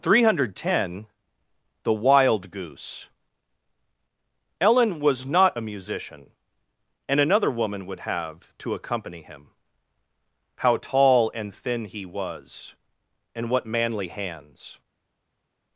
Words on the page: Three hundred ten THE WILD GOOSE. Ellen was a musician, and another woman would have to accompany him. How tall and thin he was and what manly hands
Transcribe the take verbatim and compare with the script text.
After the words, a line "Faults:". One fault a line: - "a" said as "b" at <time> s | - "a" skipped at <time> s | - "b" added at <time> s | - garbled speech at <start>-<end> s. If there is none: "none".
Three hundred ten THE WILD GOOSE. Ellen was not a musician, and another woman would have to accompany him. How tall and thin he was and what manly hands
Faults:
- "not" added at 5.3 s